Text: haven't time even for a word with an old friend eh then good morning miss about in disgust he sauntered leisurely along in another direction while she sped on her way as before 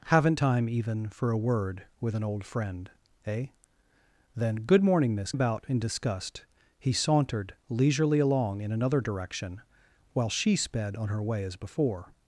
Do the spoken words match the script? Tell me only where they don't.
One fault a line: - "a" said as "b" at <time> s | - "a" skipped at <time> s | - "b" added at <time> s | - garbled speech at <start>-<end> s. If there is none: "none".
none